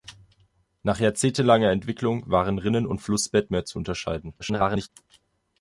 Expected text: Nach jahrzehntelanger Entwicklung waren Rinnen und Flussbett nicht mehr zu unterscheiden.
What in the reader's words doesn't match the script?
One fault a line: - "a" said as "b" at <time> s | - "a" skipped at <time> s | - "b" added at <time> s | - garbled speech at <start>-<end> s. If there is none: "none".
- "nicht" skipped at 3.5 s
- garbled speech at 4.4-4.9 s